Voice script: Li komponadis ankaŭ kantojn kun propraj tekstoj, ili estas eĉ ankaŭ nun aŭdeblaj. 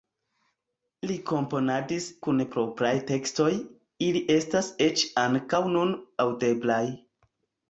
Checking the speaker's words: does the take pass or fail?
fail